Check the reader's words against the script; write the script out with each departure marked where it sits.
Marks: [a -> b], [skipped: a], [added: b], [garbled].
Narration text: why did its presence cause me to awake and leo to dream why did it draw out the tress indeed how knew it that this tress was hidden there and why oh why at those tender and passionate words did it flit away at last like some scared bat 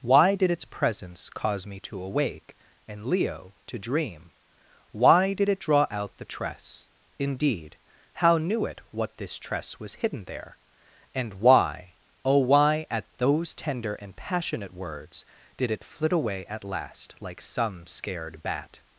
why did its presence cause me to awake and leo to dream why did it draw out the tress indeed how knew it [that -> what] this tress was hidden there and why oh why at those tender and passionate words did it flit away at last like some scared bat